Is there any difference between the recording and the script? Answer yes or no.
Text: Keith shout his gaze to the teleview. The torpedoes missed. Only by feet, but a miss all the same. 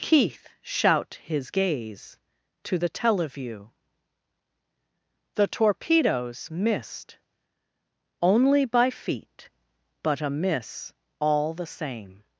no